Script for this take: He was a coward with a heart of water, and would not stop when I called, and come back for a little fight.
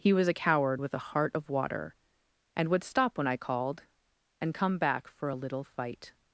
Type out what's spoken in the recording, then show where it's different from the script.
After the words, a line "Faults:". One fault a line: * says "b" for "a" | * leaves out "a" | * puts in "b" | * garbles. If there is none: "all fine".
He was a coward with a heart of water, and would stop when I called, and come back for a little fight.
Faults:
* leaves out "not"